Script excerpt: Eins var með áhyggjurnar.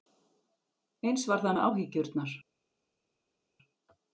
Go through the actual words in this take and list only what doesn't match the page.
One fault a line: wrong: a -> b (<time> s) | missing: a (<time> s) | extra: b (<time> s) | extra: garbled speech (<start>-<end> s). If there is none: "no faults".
extra: það (1.4 s)